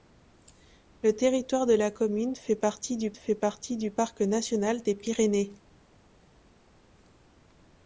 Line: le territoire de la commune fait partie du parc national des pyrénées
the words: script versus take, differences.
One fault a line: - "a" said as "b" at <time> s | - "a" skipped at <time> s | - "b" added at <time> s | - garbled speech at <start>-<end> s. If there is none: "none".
- "fait partie du" added at 3.1 s